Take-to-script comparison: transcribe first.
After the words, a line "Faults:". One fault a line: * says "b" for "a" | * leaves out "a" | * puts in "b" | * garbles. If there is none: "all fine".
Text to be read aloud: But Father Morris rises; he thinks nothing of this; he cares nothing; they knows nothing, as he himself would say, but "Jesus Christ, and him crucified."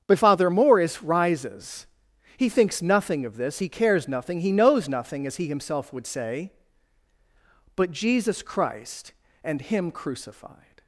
But Father Morris rises; he thinks nothing of this; he cares nothing; he knows nothing, as he himself would say, but "Jesus Christ, and him crucified."
Faults:
* says "he" for "they"